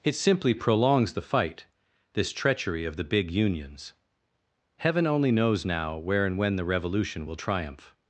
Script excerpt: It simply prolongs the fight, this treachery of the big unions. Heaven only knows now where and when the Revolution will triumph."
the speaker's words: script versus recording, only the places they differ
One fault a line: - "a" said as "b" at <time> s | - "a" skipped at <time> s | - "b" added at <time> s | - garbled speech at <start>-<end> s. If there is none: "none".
none